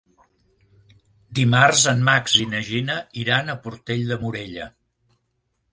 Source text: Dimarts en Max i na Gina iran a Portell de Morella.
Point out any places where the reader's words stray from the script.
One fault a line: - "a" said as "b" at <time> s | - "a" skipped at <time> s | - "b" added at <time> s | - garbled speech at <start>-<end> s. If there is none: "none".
none